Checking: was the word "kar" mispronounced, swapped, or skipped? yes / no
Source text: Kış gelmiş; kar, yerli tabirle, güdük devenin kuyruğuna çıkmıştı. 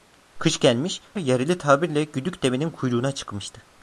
yes